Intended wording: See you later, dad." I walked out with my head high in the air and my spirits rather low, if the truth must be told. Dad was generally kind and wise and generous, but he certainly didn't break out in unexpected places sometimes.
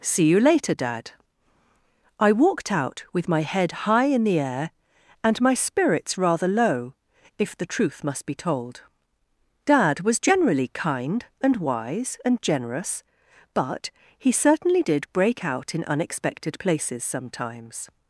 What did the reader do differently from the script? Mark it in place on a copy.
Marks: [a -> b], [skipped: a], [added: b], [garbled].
See you later, dad." I walked out with my head high in the air and my spirits rather low, if the truth must be told. Dad was generally kind and wise and generous, but he certainly [didn't -> did] break out in unexpected places sometimes.